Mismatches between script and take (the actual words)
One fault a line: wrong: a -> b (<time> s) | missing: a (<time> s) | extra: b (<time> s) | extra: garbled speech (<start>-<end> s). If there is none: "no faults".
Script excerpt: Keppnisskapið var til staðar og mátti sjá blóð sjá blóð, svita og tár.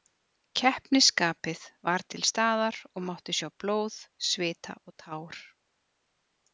missing: sjá blóð (4.0 s)